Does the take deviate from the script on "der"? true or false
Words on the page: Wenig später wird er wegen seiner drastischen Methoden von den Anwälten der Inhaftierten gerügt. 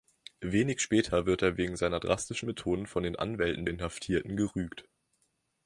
true